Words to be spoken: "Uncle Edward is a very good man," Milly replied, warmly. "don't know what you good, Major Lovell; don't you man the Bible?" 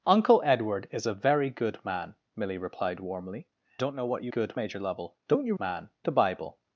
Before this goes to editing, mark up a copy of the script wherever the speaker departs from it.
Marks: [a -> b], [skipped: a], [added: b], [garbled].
"Uncle Edward is a very good man," Milly replied, warmly. "don't know what you good, Major Lovell; don't you man the Bible?"